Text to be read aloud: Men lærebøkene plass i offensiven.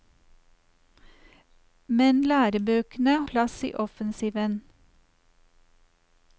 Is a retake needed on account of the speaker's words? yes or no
no